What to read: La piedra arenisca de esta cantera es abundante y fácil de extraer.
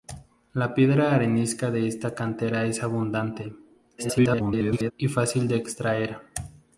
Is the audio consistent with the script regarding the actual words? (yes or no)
no